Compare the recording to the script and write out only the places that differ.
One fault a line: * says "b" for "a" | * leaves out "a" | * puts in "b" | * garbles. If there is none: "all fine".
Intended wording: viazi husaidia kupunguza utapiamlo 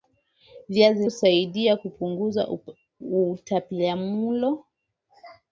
all fine